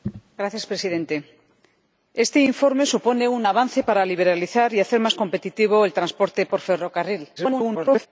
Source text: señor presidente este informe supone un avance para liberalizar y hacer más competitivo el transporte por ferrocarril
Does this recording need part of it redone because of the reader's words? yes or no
yes